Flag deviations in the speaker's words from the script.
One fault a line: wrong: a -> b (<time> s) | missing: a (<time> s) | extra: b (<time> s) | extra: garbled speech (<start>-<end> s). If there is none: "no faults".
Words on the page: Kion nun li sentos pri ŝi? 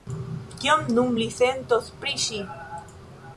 no faults